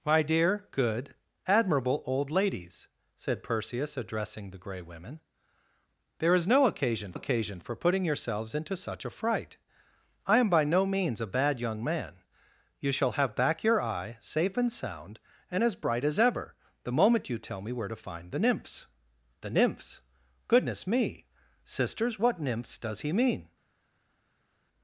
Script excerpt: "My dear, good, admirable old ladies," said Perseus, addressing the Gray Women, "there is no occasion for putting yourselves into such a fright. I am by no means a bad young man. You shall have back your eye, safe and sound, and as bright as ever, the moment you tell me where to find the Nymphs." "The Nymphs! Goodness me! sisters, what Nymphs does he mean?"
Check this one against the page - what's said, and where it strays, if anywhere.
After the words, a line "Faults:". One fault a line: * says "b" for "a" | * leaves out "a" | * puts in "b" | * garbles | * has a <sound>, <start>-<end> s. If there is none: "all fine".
"My dear, good, admirable old ladies," said Perseus, addressing the Gray Women, "there is no occasion occasion for putting yourselves into such a fright. I am by no means a bad young man. You shall have back your eye, safe and sound, and as bright as ever, the moment you tell me where to find the Nymphs." "The Nymphs! Goodness me! sisters, what Nymphs does he mean?"
Faults:
* puts in "occasion"